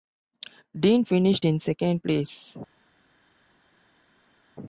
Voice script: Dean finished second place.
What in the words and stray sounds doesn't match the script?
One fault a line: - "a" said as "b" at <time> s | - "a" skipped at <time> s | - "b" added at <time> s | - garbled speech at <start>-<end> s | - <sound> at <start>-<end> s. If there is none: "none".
- "in" added at 1.4 s